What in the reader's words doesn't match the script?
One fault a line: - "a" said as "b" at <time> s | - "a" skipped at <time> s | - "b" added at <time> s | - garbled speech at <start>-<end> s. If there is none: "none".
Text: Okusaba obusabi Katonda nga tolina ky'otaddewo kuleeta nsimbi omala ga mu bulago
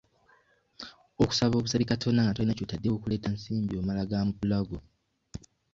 none